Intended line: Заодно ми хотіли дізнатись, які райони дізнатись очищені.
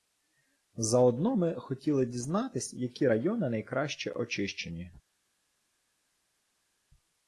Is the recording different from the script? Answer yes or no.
yes